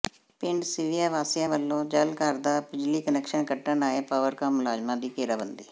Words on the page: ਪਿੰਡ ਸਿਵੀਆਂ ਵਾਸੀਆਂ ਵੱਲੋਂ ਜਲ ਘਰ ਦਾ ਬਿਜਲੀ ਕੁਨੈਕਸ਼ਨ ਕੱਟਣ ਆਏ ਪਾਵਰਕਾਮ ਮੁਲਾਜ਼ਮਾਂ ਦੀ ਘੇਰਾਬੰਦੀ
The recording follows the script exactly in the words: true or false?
true